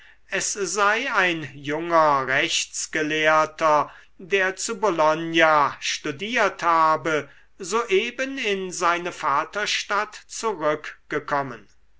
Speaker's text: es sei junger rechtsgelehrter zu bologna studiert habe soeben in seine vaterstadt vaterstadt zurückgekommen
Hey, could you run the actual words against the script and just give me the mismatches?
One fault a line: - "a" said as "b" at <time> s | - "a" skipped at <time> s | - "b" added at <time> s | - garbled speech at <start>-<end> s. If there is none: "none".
- "ein" added at 1.1 s
- "der" added at 4.2 s
- "vaterstadt" skipped at 10.2 s